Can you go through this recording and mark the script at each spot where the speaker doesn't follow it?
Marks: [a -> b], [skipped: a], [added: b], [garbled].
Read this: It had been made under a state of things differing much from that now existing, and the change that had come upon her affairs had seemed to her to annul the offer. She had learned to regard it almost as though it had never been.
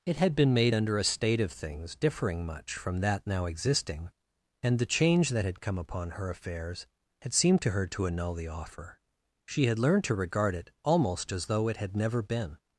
It had been made under a state of things differing much from that now existing, and the change that had come upon her affairs had seemed to her to annul the offer. She had learned to regard it almost as though it had never been.